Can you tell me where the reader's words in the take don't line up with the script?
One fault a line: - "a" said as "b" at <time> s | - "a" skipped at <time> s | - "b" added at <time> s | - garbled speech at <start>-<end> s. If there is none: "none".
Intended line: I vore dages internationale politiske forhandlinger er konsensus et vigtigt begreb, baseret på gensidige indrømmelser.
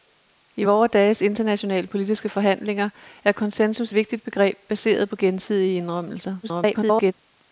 - "et" skipped at 3.9 s
- garbled speech at 6.4-7.1 s